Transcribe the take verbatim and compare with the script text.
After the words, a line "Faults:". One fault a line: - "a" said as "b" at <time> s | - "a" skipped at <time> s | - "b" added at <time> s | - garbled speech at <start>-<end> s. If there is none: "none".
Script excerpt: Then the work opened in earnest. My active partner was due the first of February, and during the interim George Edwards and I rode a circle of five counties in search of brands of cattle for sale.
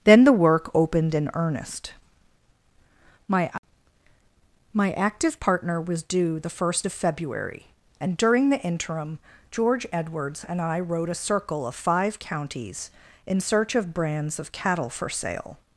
Then the work opened in earnest. My My active partner was due the first of February, and during the interim George Edwards and I rode a circle of five counties in search of brands of cattle for sale.
Faults:
- "My" added at 4.7 s